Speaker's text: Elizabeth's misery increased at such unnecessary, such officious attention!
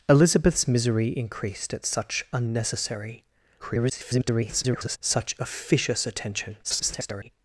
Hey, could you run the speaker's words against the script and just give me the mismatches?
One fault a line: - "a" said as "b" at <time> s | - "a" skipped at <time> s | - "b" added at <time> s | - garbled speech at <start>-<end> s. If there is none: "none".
- garbled speech at 3.6-5.0 s
- garbled speech at 6.6-7.3 s